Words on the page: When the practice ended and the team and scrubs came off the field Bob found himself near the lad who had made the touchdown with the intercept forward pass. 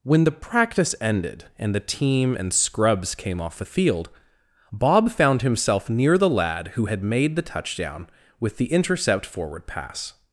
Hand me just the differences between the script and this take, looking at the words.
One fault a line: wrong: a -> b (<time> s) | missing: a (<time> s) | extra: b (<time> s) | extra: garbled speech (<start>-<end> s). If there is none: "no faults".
no faults